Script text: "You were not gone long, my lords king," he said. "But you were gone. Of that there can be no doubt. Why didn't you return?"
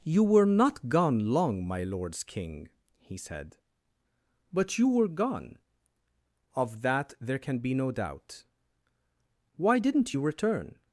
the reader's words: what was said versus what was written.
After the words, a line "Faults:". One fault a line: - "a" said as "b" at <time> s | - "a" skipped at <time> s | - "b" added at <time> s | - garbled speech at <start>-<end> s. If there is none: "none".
"You were not gone long, my lords king," he said. "But you were gone. Of that there can be no doubt. Why didn't you return?"
Faults:
none